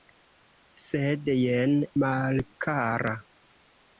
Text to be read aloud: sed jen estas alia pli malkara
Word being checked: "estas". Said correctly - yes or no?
no